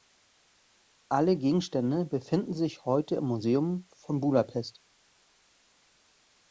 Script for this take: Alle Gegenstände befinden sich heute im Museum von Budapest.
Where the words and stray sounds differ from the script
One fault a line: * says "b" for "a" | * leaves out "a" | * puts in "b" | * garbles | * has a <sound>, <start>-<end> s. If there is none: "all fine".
all fine